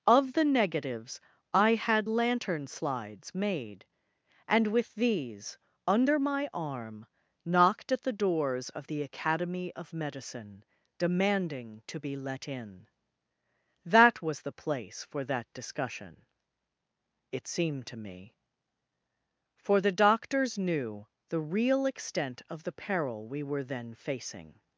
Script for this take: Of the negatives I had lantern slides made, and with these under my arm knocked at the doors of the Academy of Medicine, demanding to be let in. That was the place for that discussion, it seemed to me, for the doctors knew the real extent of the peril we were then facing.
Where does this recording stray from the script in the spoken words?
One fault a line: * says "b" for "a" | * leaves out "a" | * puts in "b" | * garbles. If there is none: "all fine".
all fine